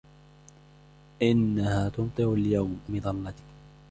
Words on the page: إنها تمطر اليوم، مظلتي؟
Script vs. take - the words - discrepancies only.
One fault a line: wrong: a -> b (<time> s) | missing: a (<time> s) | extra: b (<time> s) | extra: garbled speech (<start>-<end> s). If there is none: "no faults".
no faults